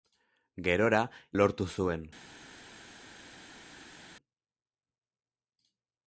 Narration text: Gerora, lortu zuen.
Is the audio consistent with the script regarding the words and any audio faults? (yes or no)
yes